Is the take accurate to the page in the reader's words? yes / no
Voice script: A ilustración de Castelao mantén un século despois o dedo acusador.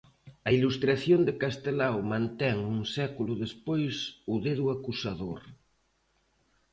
yes